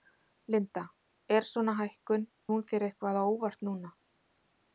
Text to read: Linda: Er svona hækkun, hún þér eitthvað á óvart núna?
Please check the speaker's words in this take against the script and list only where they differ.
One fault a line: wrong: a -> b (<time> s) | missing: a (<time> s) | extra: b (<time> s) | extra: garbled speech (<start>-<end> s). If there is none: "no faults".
no faults